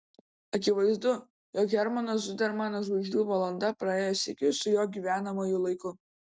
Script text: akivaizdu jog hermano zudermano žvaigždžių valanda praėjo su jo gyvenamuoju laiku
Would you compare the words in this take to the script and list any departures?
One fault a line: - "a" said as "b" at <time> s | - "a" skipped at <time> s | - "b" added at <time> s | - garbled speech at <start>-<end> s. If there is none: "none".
- "sykiu" added at 4.2 s